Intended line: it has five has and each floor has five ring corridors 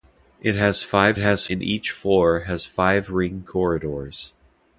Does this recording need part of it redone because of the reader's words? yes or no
no